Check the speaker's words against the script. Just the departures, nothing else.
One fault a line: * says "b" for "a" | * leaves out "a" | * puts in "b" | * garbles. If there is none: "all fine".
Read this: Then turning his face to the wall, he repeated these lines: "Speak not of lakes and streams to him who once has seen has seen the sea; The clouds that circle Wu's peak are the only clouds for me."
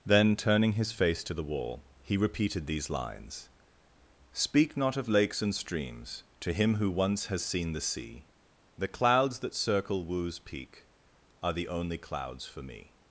* leaves out "has seen"